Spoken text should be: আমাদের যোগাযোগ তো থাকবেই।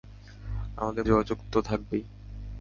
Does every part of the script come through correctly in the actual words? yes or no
yes